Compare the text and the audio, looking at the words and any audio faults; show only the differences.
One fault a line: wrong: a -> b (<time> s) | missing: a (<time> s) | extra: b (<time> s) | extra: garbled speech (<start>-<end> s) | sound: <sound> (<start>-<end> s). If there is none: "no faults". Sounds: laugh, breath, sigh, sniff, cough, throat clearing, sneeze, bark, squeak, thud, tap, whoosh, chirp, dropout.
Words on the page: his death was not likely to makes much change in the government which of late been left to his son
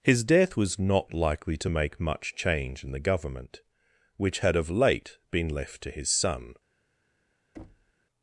wrong: makes -> make (1.7 s)
extra: had (4.4 s)
sound: thud (7.5-7.9 s)